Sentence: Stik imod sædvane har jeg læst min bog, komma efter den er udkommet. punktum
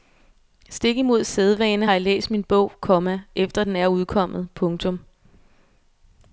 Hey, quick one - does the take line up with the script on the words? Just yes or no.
yes